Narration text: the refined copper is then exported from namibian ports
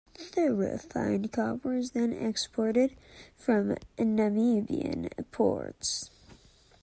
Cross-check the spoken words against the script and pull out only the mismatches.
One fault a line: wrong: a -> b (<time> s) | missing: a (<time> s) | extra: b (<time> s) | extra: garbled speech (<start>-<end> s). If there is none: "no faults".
no faults